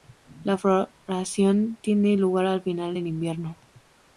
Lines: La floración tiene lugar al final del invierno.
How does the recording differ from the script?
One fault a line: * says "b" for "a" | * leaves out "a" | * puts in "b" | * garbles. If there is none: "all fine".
all fine